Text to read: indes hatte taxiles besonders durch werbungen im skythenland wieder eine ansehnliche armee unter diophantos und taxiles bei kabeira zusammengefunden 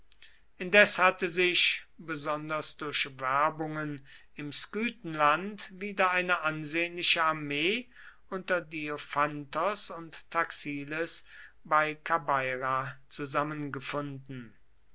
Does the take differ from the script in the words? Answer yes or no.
yes